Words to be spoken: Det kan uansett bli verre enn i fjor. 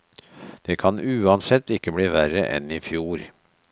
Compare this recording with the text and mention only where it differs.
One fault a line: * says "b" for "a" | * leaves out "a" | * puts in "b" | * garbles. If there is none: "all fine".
* puts in "ikke"